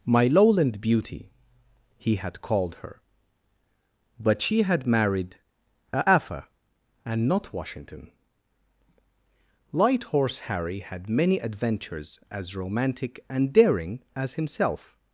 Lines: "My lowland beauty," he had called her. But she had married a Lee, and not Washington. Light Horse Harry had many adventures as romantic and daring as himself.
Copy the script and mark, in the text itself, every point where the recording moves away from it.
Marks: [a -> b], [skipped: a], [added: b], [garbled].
"My lowland beauty," he had called her. But she had married a [Lee, -> Afa] and not Washington. Light Horse Harry had many adventures as romantic and daring as himself.